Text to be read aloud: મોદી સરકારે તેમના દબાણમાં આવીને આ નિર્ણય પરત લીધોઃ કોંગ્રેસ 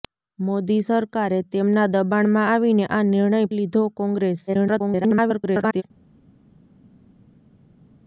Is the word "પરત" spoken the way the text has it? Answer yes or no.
no